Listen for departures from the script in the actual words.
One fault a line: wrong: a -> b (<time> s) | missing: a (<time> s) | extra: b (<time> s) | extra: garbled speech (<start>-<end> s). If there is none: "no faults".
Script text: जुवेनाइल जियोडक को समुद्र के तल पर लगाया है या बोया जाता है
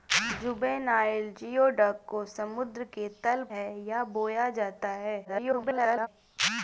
missing: पर लगाया (3.4 s)
extra: garbled speech (5.2-6.1 s)